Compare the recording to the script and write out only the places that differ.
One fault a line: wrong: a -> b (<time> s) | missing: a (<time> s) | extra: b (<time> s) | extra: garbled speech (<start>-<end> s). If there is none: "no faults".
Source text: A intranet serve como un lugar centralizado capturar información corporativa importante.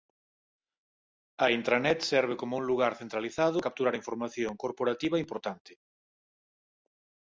no faults